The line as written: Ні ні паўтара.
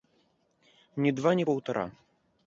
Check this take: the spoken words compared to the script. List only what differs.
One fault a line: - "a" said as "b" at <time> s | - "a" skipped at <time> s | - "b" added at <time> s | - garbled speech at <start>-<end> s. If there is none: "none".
- "два" added at 1.2 s